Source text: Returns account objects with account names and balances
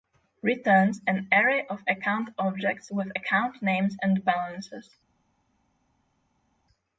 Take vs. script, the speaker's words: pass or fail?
fail